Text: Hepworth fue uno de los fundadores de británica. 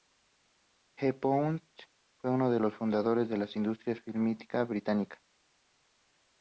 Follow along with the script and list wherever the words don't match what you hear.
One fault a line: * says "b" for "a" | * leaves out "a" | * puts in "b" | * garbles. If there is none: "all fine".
* puts in "la industria fílmica"